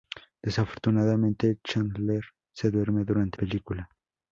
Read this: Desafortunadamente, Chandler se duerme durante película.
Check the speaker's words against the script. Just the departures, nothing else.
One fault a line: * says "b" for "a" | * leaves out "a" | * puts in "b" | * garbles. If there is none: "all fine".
all fine